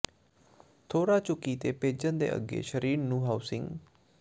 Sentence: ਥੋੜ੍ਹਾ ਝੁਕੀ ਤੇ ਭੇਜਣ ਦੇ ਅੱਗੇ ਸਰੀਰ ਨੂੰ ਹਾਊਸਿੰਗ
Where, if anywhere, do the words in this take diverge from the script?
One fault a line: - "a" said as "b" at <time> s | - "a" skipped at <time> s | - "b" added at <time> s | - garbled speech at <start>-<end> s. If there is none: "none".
none